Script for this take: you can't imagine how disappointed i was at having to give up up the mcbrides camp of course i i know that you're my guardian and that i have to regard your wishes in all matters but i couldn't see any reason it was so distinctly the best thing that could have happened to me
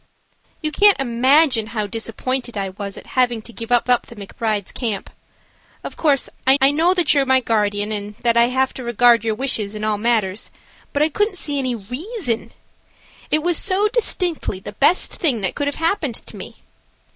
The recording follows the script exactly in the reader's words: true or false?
true